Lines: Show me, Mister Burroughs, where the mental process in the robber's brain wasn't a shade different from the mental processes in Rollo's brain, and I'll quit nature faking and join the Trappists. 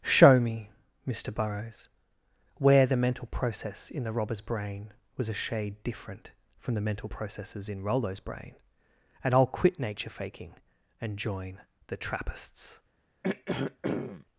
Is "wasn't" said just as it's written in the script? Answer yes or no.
no